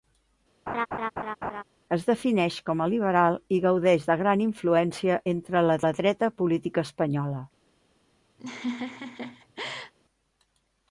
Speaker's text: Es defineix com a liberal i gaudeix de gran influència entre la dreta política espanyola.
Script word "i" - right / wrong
right